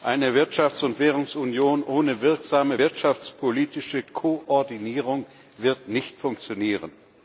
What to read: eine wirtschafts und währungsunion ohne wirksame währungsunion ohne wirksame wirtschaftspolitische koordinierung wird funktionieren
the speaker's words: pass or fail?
fail